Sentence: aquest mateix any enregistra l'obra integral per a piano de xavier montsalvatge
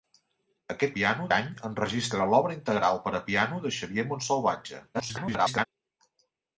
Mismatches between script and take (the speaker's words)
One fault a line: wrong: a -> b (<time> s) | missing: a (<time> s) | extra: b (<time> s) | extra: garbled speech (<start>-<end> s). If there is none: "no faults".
wrong: mateix -> piano (1.0 s)
extra: garbled speech (4.9-5.7 s)